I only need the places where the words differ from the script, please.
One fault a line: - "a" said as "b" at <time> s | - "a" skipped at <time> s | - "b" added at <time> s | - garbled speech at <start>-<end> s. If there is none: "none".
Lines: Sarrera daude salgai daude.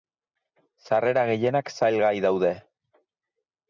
- "daude" said as "gehienak" at 1.3 s